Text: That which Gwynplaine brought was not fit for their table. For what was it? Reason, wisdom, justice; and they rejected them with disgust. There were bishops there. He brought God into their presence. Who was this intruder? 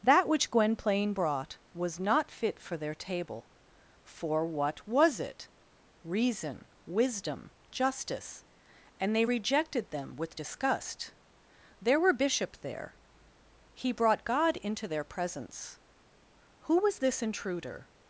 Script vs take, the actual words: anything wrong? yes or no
yes